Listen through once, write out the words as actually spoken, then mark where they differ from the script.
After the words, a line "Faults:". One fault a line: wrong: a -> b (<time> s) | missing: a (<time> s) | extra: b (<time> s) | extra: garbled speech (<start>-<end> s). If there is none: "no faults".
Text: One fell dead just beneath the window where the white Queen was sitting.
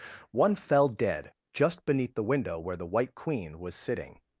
One fell dead just beneath the window where the white Queen was sitting.
Faults:
no faults